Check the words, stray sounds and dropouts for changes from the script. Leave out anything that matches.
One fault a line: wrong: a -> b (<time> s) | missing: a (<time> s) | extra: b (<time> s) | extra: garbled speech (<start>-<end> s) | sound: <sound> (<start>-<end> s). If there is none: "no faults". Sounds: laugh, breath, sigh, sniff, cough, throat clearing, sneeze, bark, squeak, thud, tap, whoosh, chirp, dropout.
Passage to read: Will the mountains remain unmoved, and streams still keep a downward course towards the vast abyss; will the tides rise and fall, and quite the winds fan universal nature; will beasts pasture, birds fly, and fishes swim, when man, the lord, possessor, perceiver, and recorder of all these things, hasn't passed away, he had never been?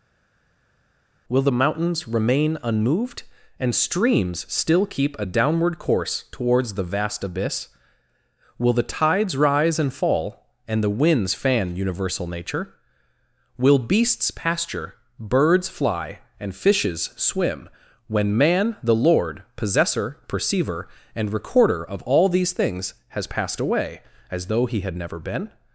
missing: quite (10.8 s)
wrong: hasn't -> has (23.1 s)
extra: as though (24.3 s)